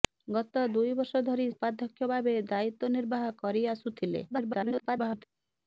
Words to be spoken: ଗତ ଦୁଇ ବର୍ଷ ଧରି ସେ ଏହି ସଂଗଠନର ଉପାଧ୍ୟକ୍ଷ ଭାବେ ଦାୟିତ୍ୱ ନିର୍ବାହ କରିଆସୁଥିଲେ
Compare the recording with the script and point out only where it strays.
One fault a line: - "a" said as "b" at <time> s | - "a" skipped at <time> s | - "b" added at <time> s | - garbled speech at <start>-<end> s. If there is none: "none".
- "ସେ ଏହି ସଂଗଠନର" skipped at 1.4 s
- garbled speech at 4.3-5.3 s